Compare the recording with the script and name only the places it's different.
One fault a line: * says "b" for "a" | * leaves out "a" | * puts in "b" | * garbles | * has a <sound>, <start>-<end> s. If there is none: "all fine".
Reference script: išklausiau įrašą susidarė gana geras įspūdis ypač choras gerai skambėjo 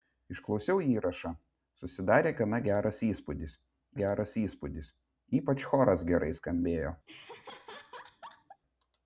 * puts in "geras įspūdis"
* has a laugh, 7.1-8.6 s